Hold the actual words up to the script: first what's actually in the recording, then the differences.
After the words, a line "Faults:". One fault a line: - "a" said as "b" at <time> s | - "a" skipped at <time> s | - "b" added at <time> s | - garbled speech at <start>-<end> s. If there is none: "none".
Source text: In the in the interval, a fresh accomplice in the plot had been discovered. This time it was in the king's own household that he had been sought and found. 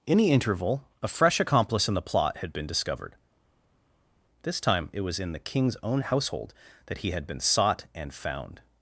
In the interval, a fresh accomplice in the plot had been discovered. This time it was in the king's own household that he had been sought and found.
Faults:
- "in the" skipped at 0.3 s